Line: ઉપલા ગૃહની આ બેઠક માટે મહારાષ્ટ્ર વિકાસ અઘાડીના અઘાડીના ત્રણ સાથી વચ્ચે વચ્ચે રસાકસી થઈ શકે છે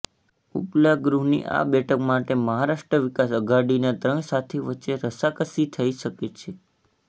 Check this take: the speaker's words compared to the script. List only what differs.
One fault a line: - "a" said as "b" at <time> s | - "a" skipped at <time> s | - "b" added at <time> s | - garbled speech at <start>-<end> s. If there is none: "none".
- "અઘાડીના" skipped at 3.9 s
- "વચ્ચે" skipped at 5.0 s